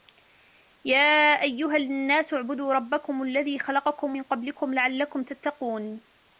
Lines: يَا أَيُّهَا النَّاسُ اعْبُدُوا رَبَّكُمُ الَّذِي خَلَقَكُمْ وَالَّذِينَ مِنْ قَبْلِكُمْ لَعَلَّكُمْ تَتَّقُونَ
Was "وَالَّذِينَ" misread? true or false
true